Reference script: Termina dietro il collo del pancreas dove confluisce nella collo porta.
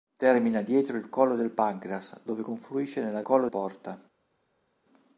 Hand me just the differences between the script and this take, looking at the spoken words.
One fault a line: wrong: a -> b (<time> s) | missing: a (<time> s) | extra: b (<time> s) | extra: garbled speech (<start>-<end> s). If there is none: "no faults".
no faults